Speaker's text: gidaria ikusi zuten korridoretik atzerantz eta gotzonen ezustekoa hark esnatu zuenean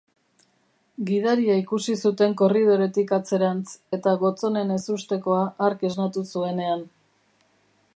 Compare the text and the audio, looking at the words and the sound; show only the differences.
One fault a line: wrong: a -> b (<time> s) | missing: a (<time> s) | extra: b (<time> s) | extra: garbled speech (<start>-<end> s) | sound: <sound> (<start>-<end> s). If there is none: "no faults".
no faults